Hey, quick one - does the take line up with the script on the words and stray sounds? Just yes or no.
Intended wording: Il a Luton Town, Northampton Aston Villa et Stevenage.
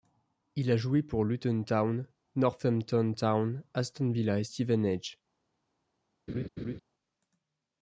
no